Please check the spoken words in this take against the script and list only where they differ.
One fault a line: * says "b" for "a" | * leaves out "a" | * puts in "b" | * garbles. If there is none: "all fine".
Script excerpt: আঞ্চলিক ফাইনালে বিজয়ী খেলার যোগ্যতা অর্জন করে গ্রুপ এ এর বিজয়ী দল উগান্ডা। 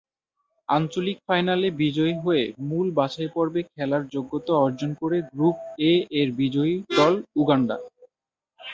* puts in "হয়ে মূল বাছাইপর্বে"